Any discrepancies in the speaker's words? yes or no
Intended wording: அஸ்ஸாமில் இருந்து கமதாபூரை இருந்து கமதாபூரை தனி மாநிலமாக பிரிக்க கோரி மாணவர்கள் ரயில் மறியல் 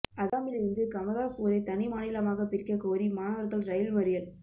yes